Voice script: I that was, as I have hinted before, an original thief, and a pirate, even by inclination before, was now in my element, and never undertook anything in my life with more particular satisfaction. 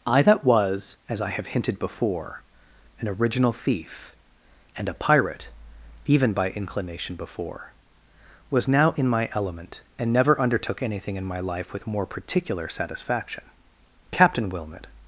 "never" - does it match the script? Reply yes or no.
yes